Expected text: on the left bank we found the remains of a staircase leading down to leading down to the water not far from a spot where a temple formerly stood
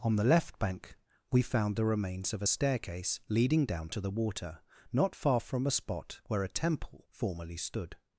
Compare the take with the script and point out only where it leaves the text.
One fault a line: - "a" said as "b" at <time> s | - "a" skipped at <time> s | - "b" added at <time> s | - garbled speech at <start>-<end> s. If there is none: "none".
- "leading down to" skipped at 4.0 s